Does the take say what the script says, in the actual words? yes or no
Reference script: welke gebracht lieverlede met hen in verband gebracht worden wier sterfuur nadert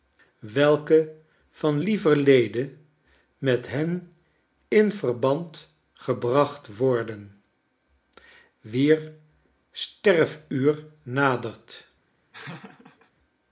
no